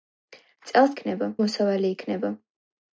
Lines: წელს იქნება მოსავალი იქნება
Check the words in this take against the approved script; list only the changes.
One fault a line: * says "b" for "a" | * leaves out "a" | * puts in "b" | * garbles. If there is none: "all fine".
all fine